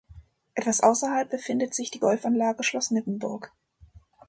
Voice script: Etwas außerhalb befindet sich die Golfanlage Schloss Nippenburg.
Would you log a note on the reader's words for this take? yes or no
no